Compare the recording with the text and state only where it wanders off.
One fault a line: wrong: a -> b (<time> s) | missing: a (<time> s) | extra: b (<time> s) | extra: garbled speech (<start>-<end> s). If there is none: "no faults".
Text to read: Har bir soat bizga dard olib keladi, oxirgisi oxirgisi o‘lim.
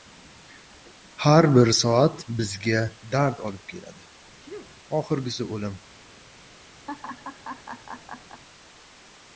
missing: oxirgisi (5.5 s)